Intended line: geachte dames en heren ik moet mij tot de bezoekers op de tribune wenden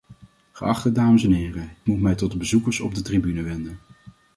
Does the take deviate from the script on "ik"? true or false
true